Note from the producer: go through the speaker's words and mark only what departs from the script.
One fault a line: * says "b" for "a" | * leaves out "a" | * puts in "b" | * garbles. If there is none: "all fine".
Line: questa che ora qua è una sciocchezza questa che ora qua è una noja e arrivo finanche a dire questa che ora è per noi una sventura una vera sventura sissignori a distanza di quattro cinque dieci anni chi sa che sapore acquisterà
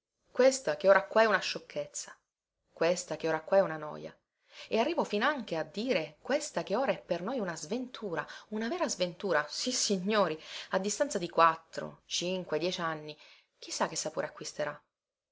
all fine